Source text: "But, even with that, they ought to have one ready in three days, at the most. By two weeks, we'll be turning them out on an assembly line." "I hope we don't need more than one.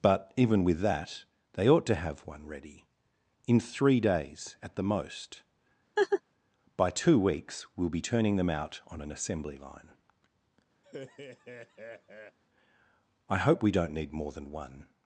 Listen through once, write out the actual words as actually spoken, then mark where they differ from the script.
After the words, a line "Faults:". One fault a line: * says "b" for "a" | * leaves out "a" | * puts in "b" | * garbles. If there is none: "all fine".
"But, even with that, they ought to have one ready in three days, at the most. By two weeks, we'll be turning them out on an assembly line." "I hope we don't need more than one.
Faults:
all fine